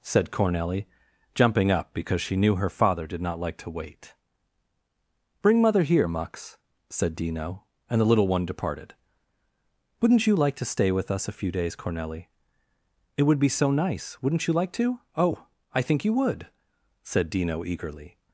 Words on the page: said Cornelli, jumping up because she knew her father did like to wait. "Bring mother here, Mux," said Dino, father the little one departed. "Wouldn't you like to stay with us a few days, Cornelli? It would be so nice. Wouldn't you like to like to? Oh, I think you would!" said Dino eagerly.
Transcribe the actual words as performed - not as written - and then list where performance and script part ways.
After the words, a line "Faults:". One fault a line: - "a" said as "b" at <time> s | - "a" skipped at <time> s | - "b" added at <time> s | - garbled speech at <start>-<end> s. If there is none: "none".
said Cornelli, jumping up because she knew her father did not like to wait. "Bring mother here, Mux," said Dino, and the little one departed. "Wouldn't you like to stay with us a few days, Cornelli? It would be so nice. Wouldn't you like to? Oh, I think you would!" said Dino eagerly.
Faults:
- "not" added at 3.2 s
- "father" said as "and" at 7.9 s
- "like to" skipped at 15.0 s